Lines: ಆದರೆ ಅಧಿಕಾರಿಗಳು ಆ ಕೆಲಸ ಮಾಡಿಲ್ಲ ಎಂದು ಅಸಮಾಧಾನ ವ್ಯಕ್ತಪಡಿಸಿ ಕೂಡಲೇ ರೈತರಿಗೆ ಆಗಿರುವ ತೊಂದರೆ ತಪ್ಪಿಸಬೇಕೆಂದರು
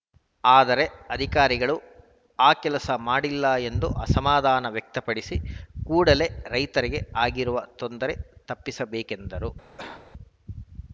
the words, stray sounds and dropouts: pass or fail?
fail